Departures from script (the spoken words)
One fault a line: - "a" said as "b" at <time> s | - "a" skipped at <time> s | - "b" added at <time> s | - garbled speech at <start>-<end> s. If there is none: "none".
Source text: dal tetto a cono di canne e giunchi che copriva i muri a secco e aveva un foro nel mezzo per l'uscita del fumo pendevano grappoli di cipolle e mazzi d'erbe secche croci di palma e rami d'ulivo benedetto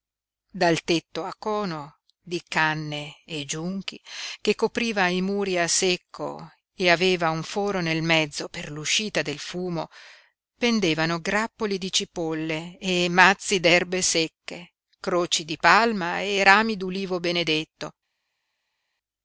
none